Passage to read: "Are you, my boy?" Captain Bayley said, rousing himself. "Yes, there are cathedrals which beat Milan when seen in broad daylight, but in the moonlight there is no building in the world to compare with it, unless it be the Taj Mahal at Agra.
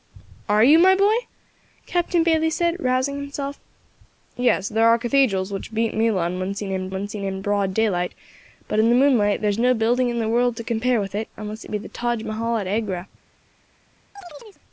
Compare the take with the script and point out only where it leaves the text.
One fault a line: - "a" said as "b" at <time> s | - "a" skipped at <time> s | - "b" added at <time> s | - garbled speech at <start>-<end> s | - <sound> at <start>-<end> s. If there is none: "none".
- "when seen in" added at 6.9 s
- chirp at 14.2-14.6 s